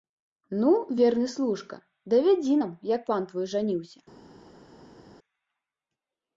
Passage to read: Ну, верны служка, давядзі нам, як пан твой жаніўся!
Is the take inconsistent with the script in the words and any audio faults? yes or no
no